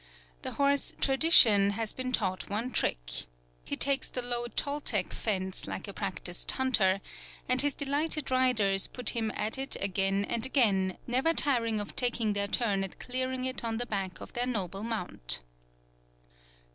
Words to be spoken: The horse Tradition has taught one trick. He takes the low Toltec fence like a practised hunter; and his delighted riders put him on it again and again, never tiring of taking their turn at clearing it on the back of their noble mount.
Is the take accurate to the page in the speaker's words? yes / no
no